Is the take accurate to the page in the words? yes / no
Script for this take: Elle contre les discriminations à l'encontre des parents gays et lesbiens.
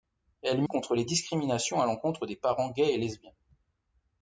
yes